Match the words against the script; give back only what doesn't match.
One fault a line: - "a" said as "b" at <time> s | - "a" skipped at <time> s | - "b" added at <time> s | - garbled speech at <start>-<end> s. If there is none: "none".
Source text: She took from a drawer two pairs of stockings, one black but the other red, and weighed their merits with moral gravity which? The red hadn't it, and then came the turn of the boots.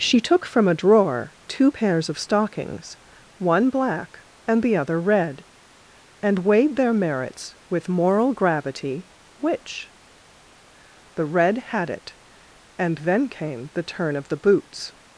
- "but" said as "and" at 4.5 s
- "hadn't" said as "had" at 11.6 s